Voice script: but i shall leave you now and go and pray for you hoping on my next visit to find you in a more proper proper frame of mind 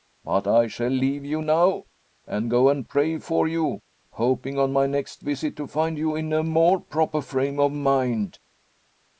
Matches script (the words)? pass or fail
fail